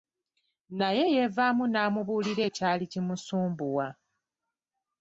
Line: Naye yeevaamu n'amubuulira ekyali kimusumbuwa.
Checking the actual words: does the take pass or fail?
pass